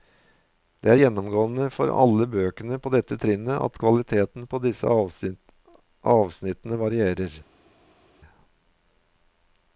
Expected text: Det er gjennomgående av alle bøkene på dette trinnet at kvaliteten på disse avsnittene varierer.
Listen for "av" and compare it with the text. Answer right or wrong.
wrong